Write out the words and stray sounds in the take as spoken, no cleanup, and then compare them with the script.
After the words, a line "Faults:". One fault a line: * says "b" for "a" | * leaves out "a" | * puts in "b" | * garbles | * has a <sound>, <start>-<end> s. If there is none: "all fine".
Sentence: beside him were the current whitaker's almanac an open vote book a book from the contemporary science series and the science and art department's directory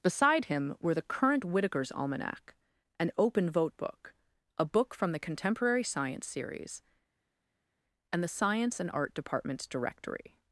beside him were the current whitaker's almanac an open vote book a book from the contemporary science series and the science and art department's directory
Faults:
all fine